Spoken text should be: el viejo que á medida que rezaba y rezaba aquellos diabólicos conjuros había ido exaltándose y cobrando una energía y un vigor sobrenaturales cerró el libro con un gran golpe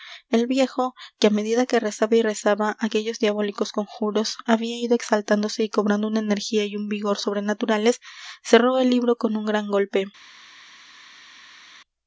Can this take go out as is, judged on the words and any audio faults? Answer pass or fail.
pass